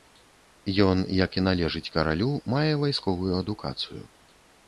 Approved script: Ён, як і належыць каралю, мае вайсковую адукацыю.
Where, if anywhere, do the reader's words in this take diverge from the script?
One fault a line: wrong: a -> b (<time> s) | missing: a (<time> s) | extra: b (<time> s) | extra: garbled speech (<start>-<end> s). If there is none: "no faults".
no faults